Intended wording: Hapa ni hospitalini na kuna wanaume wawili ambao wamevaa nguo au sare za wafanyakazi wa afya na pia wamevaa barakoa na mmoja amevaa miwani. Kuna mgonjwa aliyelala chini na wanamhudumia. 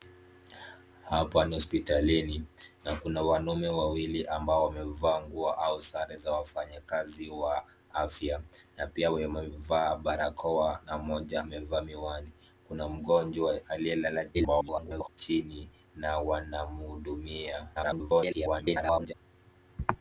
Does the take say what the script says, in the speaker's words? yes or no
no